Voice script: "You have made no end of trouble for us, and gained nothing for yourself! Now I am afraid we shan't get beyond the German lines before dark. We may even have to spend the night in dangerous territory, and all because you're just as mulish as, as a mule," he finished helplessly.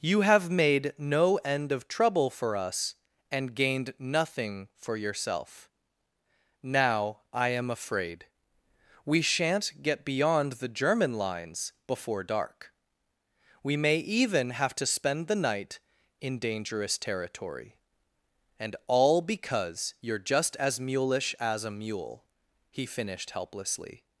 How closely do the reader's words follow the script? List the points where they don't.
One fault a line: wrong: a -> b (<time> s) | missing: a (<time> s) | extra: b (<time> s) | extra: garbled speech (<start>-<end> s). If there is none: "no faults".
missing: as (21.6 s)